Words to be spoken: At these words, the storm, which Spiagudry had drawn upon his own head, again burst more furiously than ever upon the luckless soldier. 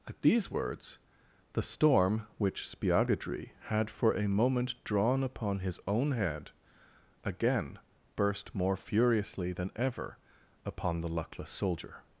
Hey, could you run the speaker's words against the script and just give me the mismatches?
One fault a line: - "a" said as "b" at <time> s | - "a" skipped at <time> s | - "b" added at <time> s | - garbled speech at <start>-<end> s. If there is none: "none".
- "for a moment" added at 3.9 s